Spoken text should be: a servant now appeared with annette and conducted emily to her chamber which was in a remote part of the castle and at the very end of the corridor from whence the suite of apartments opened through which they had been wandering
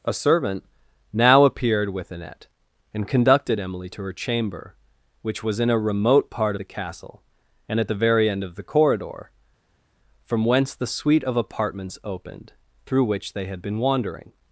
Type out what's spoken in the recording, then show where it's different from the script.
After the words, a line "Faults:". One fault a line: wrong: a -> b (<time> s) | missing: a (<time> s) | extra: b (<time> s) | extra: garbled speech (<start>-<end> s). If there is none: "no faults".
a servant now appeared with annette and conducted emily to her chamber which was in a remote part the castle and at the very end of the corridor from whence the suite of apartments opened through which they had been wandering
Faults:
missing: of (6.5 s)